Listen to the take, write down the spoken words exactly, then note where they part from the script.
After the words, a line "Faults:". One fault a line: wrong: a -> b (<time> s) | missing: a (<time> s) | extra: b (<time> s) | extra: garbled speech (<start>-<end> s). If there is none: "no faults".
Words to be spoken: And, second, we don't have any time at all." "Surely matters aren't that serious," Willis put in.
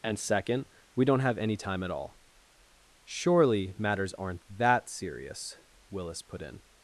And, second, we don't have any time at all." "Surely matters aren't that serious," Willis put in.
Faults:
no faults